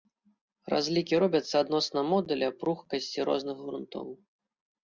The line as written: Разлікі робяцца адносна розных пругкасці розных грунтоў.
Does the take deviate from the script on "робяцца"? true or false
false